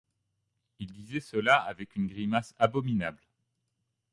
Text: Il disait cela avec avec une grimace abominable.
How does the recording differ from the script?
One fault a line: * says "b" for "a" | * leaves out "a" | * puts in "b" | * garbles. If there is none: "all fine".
* leaves out "avec"